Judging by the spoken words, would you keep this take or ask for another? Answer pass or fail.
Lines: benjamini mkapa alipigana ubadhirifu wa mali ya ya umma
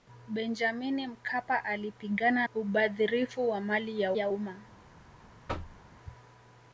pass